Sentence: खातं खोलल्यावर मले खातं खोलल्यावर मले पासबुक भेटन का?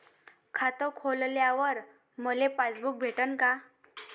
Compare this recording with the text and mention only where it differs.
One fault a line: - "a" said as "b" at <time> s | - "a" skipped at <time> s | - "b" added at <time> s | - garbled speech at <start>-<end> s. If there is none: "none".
- "खातं खोलल्यावर मले" skipped at 2.5 s